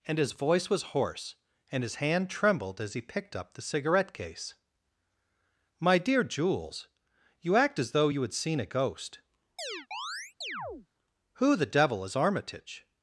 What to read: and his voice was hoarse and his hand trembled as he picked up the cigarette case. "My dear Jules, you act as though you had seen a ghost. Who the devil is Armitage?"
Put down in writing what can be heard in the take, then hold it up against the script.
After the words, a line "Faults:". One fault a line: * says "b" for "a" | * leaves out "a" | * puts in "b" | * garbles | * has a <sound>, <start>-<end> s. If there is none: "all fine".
and his voice was hoarse and his hand trembled as he picked up the cigarette case. "My dear Jules, you act as though you had seen a ghost. Who the devil is Armitage?"
Faults:
* has a chirp, 9.6-10.9 s